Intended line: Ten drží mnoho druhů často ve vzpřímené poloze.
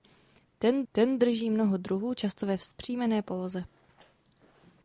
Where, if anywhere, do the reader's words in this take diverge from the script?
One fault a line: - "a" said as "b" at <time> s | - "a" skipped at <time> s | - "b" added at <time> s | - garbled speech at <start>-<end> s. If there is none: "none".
- "ten" added at 0.9 s